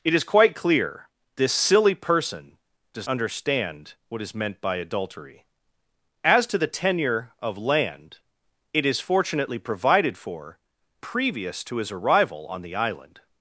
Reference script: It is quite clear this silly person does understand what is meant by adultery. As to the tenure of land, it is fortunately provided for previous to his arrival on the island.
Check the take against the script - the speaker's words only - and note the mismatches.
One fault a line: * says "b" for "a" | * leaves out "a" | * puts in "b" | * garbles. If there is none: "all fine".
all fine